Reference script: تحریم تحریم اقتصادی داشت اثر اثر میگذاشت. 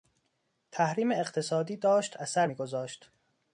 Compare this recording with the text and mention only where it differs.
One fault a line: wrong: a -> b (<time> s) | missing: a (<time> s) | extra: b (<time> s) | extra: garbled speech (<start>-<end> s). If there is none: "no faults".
missing: تحریم (1.1 s)
missing: اثر (2.5 s)